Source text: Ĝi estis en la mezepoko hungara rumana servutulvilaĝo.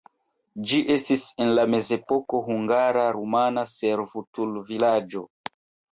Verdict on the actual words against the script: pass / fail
pass